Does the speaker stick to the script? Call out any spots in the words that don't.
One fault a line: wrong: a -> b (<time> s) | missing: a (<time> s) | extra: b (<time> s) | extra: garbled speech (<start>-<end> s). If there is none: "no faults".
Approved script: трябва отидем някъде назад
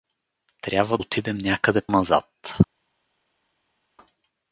no faults